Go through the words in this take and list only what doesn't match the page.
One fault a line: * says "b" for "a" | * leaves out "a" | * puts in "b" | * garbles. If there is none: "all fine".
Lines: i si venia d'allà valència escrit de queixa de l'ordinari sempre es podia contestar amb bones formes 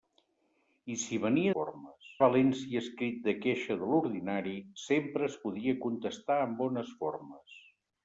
* says "formes" for "d'allà"